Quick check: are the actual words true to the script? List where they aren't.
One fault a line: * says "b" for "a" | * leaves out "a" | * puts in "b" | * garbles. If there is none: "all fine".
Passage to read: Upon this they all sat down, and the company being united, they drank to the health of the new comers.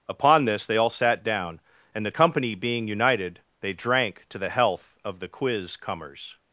* says "quiz" for "new"